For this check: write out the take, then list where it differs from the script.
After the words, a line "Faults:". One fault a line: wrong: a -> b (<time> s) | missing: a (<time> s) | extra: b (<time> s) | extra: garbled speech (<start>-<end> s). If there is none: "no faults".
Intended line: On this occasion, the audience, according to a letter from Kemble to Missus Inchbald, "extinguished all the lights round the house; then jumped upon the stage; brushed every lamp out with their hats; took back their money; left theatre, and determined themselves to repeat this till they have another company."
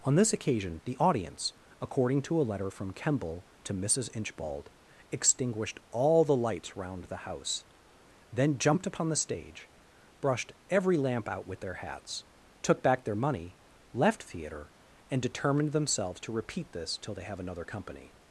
On this occasion, the audience, according to a letter from Kemble to Missus Inchbald, "extinguished all the lights round the house; then jumped upon the stage; brushed every lamp out with their hats; took back their money; left theatre, and determined themselves to repeat this till they have another company."
Faults:
no faults